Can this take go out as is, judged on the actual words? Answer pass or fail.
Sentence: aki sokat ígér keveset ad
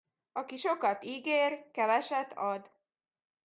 pass